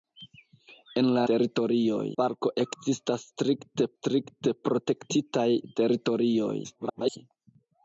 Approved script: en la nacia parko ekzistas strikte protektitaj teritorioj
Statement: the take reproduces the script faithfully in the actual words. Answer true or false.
false